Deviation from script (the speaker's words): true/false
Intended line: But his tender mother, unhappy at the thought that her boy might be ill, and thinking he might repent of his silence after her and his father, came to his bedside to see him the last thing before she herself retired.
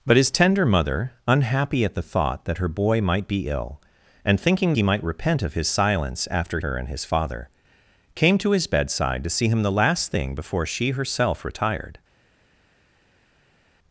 false